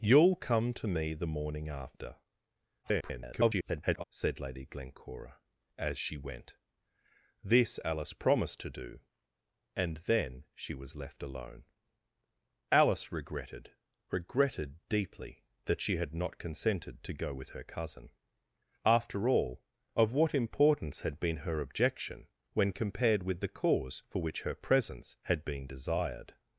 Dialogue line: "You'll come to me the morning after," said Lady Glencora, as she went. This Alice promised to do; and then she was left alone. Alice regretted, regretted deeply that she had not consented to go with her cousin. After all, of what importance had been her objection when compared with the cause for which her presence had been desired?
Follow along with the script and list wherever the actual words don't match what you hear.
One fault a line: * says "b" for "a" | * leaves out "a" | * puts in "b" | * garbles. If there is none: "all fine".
* garbles